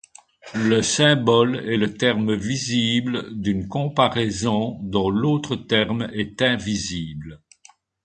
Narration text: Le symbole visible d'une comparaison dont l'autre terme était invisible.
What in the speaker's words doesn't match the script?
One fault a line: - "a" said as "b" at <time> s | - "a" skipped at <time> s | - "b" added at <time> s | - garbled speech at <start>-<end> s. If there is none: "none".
- "est le terme" added at 1.6 s
- "était" said as "est" at 6.1 s